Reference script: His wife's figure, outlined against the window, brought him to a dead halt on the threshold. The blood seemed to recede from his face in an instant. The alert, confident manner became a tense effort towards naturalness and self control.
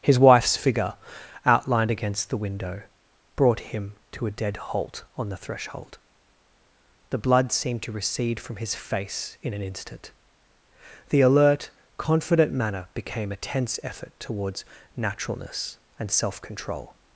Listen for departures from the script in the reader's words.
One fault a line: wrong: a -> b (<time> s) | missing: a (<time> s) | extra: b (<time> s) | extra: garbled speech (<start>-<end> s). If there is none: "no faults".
no faults